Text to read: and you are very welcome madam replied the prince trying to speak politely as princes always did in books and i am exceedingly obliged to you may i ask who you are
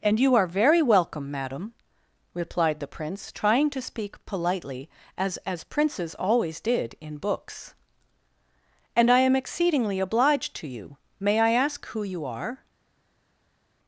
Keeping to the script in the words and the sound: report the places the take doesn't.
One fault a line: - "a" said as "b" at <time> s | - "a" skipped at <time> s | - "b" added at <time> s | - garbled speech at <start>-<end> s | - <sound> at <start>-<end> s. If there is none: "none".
- "as" added at 5.5 s